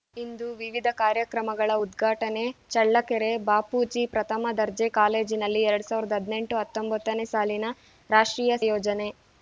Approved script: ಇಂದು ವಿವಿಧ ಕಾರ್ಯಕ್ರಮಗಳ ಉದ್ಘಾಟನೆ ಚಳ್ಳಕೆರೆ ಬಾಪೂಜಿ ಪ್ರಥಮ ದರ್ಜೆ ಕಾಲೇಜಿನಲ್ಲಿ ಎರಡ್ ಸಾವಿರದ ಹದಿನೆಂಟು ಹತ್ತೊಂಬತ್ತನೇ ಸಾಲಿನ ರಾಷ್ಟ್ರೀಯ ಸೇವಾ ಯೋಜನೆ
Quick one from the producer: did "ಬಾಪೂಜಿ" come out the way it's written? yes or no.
yes